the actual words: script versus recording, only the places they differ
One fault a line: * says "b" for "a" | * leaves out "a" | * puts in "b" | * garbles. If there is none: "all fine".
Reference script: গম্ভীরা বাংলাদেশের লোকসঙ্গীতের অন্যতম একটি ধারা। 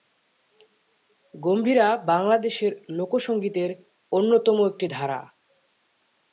all fine